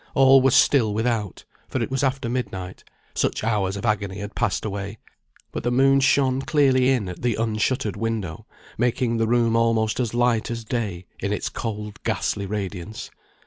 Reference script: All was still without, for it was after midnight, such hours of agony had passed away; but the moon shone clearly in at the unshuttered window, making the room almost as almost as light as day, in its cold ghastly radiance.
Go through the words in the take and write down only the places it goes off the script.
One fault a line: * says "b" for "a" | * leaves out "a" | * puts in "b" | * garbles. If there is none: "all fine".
* leaves out "almost as"